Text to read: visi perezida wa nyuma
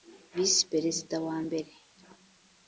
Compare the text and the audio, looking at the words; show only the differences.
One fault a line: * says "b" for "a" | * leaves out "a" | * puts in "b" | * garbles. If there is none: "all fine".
* says "mbere" for "nyuma"